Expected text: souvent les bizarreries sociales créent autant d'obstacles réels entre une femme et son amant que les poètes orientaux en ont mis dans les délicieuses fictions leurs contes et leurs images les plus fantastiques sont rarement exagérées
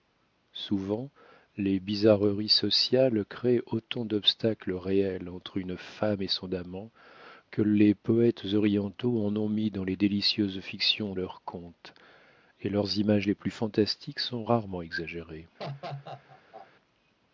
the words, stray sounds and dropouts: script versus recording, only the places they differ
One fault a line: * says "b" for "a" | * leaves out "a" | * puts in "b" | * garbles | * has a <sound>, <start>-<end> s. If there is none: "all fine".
* has a laugh, 15.6-16.7 s